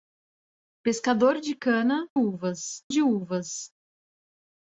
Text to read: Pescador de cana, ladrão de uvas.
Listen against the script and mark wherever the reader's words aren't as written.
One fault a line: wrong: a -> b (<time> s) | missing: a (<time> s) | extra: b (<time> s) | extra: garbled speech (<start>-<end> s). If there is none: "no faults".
wrong: ladrão -> uvas (2.1 s)